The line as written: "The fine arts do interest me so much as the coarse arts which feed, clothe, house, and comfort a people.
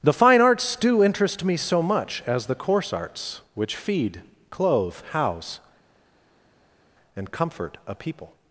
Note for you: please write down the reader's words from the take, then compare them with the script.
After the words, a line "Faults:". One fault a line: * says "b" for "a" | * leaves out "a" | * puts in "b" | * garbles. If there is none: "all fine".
"The fine arts do interest me so much as the coarse arts which feed, clothe, house, and comfort a people.
Faults:
all fine